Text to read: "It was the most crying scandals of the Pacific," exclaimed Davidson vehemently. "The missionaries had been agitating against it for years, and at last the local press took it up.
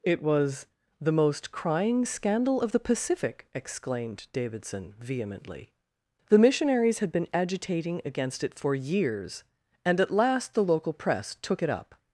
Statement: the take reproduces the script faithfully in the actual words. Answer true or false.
false